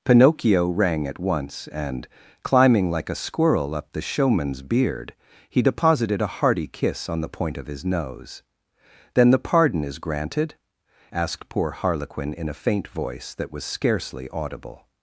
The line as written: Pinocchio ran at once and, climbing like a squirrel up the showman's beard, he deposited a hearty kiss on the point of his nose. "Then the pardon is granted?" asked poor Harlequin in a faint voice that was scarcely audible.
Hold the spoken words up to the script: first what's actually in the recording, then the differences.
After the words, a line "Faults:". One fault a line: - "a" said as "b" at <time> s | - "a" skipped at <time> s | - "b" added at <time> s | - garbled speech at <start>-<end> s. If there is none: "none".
Pinocchio rang at once and, climbing like a squirrel up the showman's beard, he deposited a hearty kiss on the point of his nose. "Then the pardon is granted?" asked poor Harlequin in a faint voice that was scarcely audible.
Faults:
- "ran" said as "rang" at 0.7 s